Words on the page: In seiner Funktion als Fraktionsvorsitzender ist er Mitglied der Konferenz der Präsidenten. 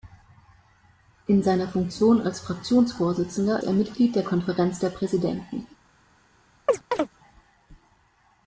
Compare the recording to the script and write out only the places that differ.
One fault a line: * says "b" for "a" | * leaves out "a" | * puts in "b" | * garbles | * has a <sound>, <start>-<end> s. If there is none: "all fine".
* leaves out "ist"
* has a chirp, 6.7-7.1 s